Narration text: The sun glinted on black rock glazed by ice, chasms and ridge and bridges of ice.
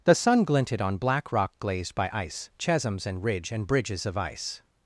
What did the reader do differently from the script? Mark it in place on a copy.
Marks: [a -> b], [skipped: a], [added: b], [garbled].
The sun glinted on black rock glazed by ice, chasms and ridge and bridges of ice.